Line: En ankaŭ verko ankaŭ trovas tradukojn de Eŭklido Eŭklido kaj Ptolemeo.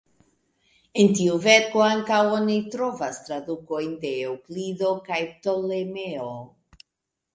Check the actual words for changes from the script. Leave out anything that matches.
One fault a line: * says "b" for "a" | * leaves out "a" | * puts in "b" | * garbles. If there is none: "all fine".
* says "tiu" for "ankaŭ"
* puts in "oni"
* leaves out "Eŭklido"